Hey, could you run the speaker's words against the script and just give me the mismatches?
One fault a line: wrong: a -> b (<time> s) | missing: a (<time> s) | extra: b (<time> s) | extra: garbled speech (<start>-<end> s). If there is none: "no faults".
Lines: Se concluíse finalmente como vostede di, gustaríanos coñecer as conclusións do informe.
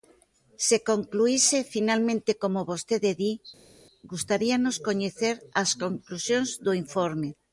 no faults